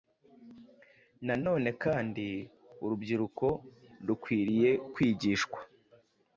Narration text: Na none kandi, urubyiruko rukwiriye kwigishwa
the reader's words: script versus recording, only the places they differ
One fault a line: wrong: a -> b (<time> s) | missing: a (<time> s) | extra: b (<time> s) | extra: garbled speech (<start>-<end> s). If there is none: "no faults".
no faults